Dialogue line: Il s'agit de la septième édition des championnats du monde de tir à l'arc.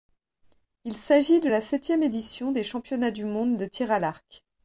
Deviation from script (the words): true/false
false